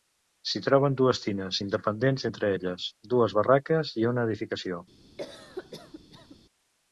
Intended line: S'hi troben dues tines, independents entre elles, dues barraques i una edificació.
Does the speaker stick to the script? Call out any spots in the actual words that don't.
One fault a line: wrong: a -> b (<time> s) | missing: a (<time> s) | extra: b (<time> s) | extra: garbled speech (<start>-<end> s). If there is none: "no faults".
no faults